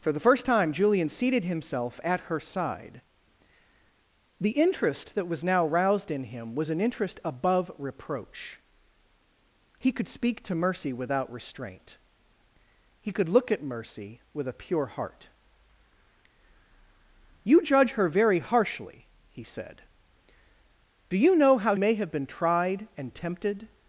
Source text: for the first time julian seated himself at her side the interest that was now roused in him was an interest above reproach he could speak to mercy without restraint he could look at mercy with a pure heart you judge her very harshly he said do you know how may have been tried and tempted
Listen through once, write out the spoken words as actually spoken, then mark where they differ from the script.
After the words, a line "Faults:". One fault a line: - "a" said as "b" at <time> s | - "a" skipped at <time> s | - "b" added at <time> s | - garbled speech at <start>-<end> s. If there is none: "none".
for the first time julian seated himself at her side the interest that was now roused in him was an interest above reproach he could speak to mercy without restraint he could look at mercy with a pure heart you judge her very harshly he said do you know how may have been tried and tempted
Faults:
none